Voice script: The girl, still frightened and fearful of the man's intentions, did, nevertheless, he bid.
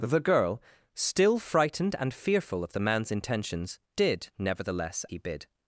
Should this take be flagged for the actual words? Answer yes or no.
no